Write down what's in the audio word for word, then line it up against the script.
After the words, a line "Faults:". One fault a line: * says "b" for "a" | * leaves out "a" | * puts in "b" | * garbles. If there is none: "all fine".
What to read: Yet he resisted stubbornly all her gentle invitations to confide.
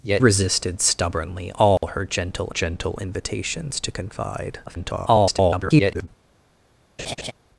Yet resisted stubbornly all her gentle gentle invitations to confide. [garbled]
Faults:
* leaves out "he"
* puts in "gentle"
* garbles